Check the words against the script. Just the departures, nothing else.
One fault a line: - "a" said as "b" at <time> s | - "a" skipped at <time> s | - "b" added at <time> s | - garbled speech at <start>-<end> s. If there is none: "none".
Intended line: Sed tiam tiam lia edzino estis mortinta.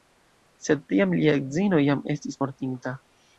- "tiam" skipped at 1.1 s
- "jam" added at 1.9 s